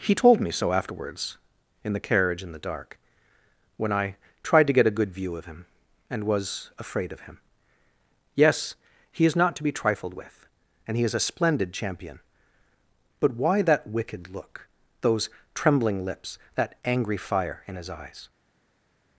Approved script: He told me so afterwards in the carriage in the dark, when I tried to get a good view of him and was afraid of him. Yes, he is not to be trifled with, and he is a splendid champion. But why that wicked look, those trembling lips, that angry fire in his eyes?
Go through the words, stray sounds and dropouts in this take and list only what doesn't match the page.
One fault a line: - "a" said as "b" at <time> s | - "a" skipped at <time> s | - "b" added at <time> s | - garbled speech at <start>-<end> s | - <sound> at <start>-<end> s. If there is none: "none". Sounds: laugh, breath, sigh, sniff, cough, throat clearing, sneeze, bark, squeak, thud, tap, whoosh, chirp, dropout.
none